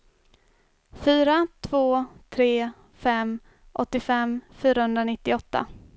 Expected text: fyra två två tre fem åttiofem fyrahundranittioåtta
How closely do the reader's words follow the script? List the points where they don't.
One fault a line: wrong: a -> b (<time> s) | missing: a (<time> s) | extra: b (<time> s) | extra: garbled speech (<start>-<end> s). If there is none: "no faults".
missing: två (2.0 s)